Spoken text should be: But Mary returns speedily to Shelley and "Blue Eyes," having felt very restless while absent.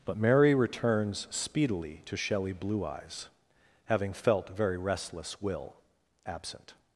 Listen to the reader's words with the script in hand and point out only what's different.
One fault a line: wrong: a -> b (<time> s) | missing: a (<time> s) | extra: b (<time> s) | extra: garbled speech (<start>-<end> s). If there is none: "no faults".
missing: and (2.5 s)
wrong: while -> will (5.4 s)